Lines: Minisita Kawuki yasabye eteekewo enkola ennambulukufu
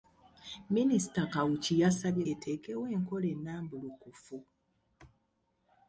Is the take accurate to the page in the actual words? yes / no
yes